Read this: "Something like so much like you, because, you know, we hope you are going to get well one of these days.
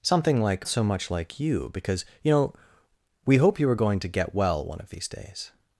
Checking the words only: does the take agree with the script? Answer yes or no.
yes